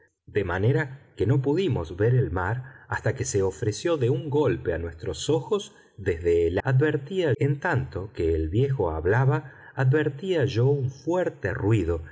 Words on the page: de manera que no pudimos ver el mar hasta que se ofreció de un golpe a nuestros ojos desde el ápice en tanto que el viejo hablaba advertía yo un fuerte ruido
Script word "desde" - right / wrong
right